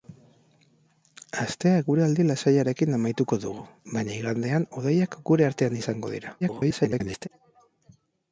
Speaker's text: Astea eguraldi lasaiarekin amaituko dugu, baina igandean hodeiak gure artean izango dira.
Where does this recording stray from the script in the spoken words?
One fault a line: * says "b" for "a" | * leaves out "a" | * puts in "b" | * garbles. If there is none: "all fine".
* garbles